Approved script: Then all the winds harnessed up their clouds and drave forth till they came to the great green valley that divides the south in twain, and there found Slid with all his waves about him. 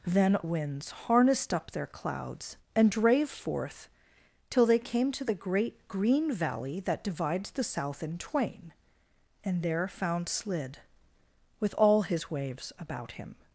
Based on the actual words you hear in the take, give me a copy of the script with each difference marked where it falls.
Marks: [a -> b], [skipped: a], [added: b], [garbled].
Then [skipped: all the] winds harnessed up their clouds and drave forth till they came to the great green valley that divides the south in twain, and there found Slid with all his waves about him.